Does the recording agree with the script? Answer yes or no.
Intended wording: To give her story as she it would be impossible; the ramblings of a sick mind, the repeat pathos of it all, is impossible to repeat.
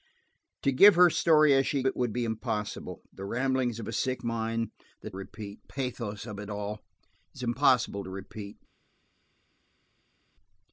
yes